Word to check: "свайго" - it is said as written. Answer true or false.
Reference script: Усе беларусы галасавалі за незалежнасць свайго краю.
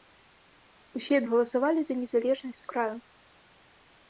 false